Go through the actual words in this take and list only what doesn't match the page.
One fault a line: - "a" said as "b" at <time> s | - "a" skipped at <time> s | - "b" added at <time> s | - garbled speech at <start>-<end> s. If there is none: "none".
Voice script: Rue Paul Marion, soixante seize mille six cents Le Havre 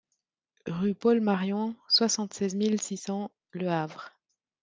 none